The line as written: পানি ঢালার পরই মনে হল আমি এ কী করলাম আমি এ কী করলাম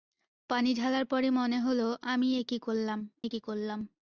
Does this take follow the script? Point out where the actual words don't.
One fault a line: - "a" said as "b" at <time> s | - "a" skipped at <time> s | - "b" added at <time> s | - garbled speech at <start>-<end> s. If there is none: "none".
- "আমি" skipped at 3.0 s